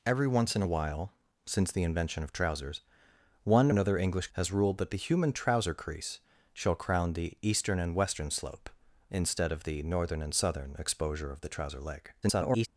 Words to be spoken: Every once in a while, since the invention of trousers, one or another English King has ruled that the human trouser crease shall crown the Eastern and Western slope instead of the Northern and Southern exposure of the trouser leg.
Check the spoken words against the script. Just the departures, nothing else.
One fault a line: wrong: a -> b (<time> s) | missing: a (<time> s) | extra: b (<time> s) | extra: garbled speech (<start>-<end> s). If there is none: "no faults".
missing: or (3.7 s)
missing: King (4.3 s)
extra: garbled speech (12.2-12.7 s)